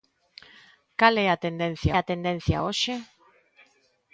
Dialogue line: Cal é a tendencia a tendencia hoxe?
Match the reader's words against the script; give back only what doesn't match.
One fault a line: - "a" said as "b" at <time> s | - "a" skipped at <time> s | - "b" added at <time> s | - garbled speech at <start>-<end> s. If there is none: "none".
none